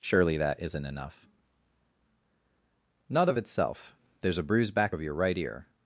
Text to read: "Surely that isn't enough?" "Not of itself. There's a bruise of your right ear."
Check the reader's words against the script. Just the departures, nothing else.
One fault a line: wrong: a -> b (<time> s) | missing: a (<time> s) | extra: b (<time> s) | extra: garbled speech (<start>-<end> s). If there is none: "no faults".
extra: back (4.7 s)